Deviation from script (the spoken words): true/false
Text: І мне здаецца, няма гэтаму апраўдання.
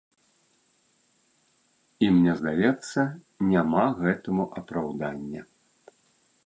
false